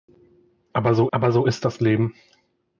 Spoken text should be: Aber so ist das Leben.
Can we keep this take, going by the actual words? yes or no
no